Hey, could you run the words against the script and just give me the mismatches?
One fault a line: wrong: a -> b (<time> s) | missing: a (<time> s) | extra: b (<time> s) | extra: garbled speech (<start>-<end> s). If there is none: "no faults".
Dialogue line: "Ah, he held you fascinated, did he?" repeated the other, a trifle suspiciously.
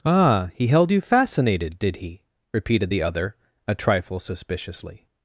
no faults